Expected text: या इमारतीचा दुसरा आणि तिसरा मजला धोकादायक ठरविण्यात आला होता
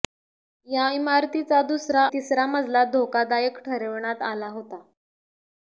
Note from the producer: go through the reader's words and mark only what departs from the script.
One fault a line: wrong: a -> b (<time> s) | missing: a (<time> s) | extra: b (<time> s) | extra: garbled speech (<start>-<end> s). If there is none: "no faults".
missing: आणि (2.0 s)